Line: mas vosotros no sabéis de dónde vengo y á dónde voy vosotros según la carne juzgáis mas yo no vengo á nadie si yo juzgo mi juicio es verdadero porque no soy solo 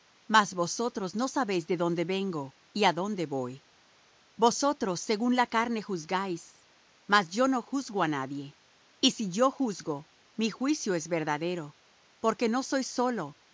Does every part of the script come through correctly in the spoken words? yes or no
no